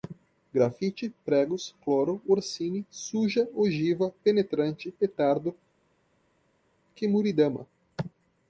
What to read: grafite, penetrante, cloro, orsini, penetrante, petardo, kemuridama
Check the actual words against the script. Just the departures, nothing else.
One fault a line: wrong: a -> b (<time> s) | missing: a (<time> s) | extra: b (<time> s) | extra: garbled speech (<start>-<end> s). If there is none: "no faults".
wrong: penetrante -> pregos (1.2 s)
extra: suja ogiva (2.9 s)